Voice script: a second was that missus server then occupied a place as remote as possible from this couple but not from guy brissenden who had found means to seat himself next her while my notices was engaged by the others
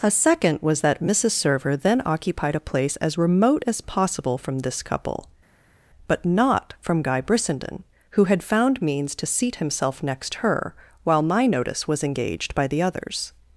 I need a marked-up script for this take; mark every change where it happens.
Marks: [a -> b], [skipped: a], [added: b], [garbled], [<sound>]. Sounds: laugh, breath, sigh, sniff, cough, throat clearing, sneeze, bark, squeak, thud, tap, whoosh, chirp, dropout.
a second was that missus server then occupied a place as remote as possible from this couple but not from guy brissenden who had found means to seat himself next her while my [notices -> notice] was engaged by the others